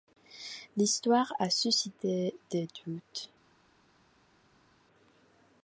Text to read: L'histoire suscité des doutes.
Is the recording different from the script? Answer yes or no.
yes